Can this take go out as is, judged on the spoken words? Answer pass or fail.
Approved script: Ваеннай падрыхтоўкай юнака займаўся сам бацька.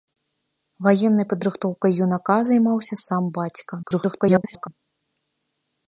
fail